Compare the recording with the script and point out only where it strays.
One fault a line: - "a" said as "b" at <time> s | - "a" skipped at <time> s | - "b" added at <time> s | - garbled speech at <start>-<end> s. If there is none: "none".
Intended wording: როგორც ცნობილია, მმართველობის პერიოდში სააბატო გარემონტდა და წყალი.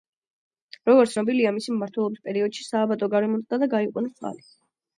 - "მისი" added at 1.6 s
- "გაიყვანეს" added at 3.8 s